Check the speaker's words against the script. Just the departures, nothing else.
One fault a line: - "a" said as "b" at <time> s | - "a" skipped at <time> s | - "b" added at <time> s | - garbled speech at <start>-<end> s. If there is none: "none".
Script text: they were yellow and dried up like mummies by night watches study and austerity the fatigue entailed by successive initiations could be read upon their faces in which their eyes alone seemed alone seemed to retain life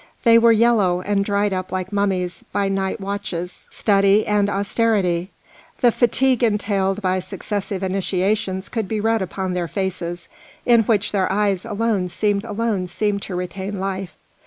none